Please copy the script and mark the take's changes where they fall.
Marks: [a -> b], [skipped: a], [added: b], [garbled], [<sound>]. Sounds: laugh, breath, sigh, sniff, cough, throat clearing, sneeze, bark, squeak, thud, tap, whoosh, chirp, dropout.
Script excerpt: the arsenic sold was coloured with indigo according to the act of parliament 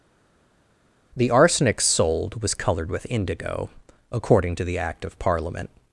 the arsenic sold was coloured with indigo according to the act of parliament